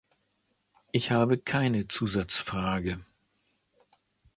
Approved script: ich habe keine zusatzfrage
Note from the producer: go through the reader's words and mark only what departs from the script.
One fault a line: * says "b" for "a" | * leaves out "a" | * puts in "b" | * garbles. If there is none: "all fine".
all fine